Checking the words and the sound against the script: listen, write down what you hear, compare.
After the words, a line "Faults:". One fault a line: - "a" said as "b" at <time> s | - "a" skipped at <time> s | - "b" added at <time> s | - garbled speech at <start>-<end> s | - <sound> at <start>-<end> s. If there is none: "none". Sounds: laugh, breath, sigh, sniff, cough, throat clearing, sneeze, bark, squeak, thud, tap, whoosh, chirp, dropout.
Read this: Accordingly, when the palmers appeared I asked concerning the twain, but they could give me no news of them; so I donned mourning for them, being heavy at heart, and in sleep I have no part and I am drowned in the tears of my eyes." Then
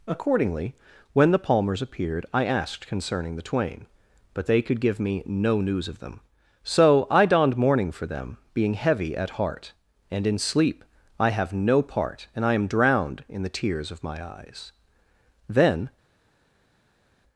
Accordingly, when the palmers appeared I asked concerning the twain, but they could give me no news of them; so I donned mourning for them, being heavy at heart, and in sleep I have no part and I am drowned in the tears of my eyes." Then
Faults:
none